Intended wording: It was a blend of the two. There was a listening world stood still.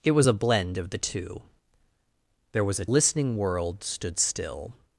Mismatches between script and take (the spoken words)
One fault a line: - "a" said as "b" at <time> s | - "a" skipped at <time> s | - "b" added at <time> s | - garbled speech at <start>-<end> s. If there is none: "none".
none